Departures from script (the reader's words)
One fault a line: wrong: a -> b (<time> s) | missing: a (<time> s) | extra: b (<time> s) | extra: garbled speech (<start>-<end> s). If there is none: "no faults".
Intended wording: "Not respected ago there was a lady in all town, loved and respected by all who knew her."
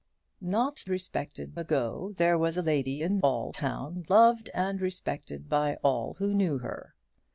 no faults